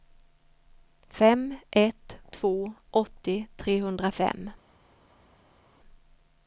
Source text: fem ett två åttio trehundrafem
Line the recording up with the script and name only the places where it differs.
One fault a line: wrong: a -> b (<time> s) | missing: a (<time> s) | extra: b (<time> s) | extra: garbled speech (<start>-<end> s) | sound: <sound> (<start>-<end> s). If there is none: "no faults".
no faults